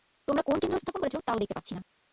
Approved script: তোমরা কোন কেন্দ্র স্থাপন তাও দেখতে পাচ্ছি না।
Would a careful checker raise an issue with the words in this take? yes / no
yes